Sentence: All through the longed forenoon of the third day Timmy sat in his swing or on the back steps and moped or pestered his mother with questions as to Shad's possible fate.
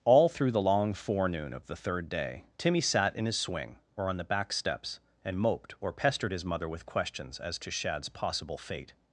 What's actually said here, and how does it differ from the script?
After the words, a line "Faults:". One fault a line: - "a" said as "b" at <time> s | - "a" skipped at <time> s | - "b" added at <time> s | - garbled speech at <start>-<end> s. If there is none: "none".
All through the long forenoon of the third day Timmy sat in his swing or on the back steps and moped or pestered his mother with questions as to Shad's possible fate.
Faults:
- "longed" said as "long" at 0.6 s